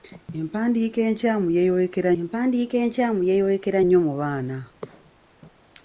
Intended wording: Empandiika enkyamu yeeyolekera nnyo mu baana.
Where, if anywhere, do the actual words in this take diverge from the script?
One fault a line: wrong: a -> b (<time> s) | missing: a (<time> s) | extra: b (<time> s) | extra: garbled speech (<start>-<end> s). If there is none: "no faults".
extra: empandiika enkyamu yeeyolekera (2.2 s)